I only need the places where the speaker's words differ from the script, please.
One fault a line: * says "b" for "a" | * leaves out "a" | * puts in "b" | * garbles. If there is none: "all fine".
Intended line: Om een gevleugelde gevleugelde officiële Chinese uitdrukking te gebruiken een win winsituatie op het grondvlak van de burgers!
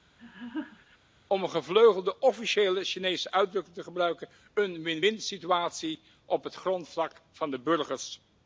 * leaves out "gevleugelde"